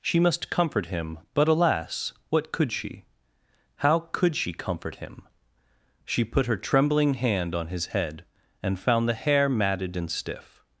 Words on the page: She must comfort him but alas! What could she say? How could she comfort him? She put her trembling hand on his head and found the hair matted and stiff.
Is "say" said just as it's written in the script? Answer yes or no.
no